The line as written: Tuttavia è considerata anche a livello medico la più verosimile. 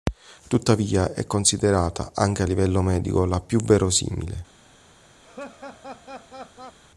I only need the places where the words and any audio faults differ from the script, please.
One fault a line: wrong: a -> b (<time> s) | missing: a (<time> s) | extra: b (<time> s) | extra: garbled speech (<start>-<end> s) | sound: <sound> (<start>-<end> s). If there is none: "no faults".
sound: laugh (5.2-6.8 s)